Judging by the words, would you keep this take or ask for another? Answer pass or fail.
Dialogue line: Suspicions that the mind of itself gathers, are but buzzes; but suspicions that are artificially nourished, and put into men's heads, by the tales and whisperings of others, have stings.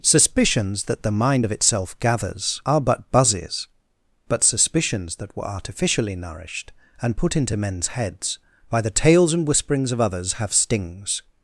fail